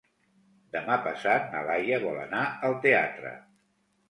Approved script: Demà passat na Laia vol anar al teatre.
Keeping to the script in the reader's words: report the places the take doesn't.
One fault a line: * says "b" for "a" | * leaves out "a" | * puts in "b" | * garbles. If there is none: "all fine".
all fine